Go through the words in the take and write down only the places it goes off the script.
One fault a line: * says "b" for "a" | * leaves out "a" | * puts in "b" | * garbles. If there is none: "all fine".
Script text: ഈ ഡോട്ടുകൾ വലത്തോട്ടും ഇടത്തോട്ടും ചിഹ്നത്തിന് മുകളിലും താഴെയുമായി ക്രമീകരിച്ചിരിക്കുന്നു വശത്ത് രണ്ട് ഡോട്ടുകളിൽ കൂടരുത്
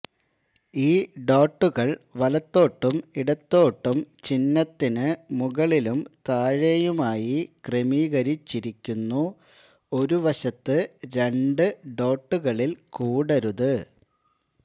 * puts in "ഒരു"